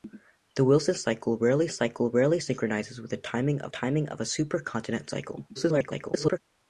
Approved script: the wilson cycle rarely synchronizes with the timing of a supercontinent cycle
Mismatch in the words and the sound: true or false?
true